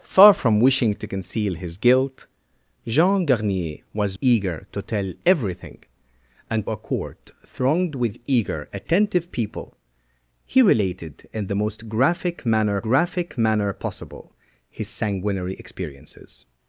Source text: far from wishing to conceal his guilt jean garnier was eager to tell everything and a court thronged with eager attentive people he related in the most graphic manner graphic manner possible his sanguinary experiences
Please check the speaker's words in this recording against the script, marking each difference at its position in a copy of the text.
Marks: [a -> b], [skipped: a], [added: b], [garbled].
far from wishing to conceal his guilt jean garnier was eager to tell everything and a court thronged with eager attentive people he related in the most graphic manner graphic manner possible his sanguinary experiences